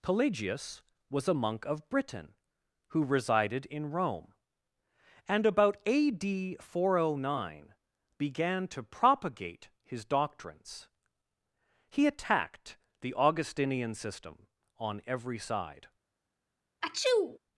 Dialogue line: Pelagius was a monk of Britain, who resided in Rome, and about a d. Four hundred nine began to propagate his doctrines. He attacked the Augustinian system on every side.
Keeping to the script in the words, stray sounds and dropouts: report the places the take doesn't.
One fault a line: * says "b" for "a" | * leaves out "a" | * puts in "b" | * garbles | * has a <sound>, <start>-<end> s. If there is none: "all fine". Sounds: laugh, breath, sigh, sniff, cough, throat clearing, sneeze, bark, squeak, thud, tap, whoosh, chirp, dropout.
* has a sneeze, 16.8-17.4 s